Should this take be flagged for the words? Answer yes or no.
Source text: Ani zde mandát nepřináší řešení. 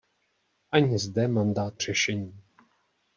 yes